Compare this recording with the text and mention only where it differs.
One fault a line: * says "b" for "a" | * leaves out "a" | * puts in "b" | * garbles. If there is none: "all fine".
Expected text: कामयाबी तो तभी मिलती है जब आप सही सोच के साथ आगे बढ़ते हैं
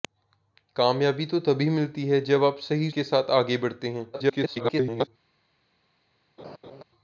* leaves out "सोच"
* garbles